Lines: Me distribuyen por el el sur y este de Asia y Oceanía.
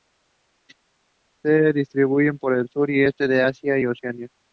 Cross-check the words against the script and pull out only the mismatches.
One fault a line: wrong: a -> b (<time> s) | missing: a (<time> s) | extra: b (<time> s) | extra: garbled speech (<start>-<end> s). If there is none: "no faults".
wrong: Me -> Se (1.4 s)
missing: el (2.7 s)